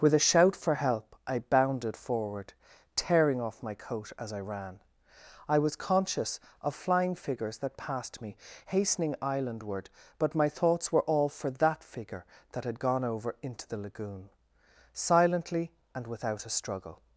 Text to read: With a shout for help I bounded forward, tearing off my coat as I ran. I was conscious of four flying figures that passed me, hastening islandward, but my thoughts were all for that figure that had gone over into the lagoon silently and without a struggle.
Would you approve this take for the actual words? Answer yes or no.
no